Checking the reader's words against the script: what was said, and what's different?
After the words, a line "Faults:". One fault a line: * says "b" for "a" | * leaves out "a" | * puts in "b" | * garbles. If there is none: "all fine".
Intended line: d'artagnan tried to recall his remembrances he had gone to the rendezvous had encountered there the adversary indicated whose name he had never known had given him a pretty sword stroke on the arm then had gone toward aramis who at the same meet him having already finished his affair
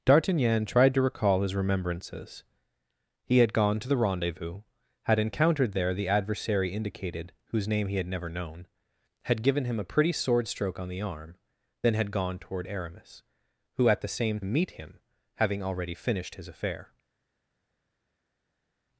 d'artagnan tried to recall his remembrances he had gone to the rendezvous had encountered there the adversary indicated whose name he had never known had given him a pretty sword stroke on the arm then had gone toward aramis who at the same meet him having already finished his affair
Faults:
all fine